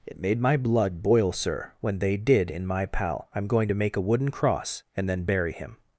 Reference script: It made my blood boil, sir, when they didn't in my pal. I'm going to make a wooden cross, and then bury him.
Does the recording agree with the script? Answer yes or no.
no